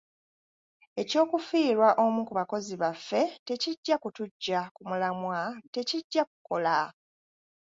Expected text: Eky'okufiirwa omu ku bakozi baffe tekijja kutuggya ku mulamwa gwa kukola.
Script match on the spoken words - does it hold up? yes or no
no